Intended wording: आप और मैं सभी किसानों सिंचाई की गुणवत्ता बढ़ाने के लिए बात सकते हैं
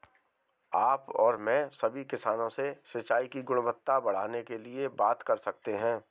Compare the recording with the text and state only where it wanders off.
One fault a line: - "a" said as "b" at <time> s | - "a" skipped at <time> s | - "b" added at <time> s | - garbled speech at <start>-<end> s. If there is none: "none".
- "से" added at 2.5 s
- "कर" added at 5.2 s